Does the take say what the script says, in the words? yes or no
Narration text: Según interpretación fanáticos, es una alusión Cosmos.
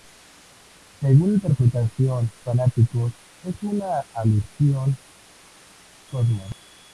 yes